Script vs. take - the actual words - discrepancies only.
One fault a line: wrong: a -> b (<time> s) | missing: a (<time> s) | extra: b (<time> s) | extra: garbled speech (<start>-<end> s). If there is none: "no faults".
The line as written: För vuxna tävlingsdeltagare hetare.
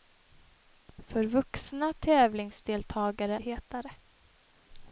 no faults